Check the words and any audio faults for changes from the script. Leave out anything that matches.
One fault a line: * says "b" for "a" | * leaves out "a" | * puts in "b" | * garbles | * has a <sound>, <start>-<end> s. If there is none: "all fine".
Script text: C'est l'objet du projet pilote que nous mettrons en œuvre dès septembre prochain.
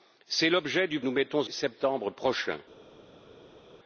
* leaves out "projet pilote que"
* leaves out "en œuvre dès"